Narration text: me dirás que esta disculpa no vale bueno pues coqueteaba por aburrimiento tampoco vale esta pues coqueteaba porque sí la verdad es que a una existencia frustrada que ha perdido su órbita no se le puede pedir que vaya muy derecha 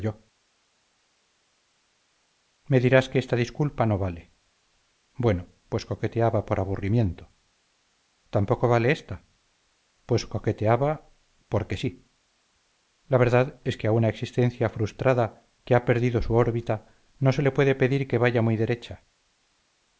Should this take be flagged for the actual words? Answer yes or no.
no